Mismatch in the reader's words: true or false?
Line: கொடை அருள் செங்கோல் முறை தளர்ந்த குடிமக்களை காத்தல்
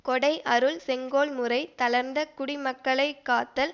false